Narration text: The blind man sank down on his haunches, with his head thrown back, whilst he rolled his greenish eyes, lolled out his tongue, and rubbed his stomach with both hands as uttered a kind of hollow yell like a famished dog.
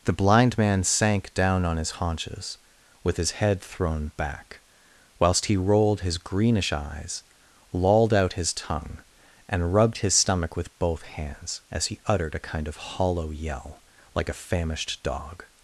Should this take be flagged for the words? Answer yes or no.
yes